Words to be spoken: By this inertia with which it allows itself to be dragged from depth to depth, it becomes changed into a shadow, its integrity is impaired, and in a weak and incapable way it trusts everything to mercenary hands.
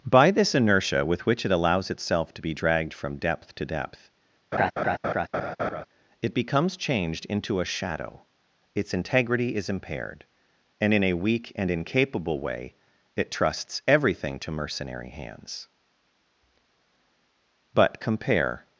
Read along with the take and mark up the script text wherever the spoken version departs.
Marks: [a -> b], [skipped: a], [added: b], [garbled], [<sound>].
By this inertia with which it allows itself to be dragged from depth to depth, [laugh] it becomes changed into a shadow, its integrity is impaired, and in a weak and incapable way it trusts everything to mercenary hands. [added: But compare]